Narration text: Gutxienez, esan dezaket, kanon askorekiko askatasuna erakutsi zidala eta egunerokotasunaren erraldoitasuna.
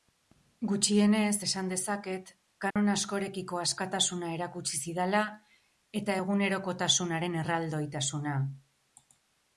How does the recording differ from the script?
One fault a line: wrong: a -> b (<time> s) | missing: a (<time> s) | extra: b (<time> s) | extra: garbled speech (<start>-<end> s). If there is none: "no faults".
no faults